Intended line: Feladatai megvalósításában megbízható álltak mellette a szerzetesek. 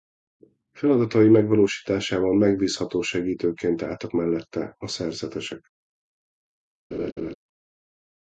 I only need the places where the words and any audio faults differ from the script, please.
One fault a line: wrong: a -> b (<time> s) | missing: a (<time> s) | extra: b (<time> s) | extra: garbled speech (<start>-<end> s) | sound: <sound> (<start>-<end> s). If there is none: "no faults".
extra: segítőként (3.0 s)
sound: laugh (6.9-7.4 s)